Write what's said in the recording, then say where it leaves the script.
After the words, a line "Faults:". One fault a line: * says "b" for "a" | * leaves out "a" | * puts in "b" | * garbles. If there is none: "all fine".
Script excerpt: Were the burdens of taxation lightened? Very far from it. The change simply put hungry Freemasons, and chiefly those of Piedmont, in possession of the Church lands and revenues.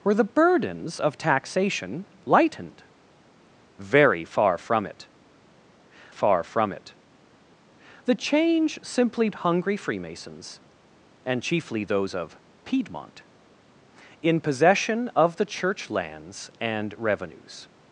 Were the burdens of taxation lightened? Very far from it far from it. The change simply hungry Freemasons, and chiefly those of Piedmont, in possession of the Church lands and revenues.
Faults:
* puts in "far from it"
* leaves out "put"